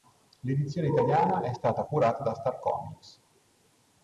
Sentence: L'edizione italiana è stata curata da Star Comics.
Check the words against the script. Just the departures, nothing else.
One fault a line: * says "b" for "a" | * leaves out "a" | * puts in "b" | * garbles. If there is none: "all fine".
all fine